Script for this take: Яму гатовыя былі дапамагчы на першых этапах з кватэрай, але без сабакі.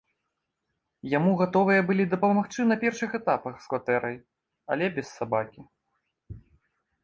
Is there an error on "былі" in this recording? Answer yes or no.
no